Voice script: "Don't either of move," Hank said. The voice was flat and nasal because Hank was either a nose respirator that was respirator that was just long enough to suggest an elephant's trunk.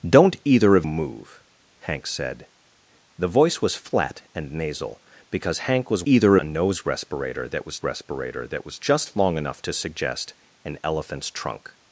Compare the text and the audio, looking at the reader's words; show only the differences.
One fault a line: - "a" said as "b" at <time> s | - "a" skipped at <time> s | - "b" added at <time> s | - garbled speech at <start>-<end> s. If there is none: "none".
none